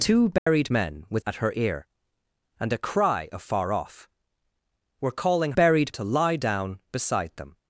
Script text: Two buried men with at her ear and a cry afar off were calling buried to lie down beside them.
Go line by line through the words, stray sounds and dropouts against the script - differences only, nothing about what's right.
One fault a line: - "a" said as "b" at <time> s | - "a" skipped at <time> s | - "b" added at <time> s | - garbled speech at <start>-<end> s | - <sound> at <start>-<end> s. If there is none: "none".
- dropout at 0.4-0.5 s